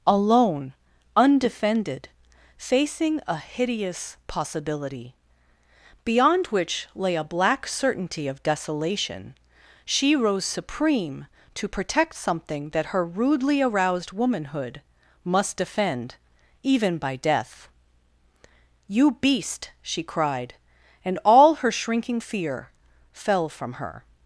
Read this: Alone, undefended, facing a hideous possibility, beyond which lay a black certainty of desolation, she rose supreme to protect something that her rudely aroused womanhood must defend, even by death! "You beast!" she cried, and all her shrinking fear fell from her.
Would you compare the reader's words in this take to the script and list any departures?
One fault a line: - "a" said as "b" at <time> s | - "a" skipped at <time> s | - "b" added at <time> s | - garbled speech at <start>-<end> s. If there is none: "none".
none